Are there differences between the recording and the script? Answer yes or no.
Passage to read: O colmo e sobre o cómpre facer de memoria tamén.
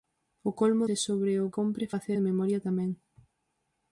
no